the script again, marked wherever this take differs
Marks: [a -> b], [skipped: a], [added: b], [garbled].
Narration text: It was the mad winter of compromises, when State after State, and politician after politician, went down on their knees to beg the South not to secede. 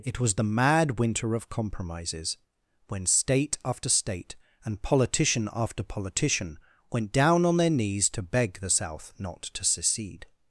It was the mad winter of compromises, when State after State, and politician after politician, went down on their knees to beg the South not to secede.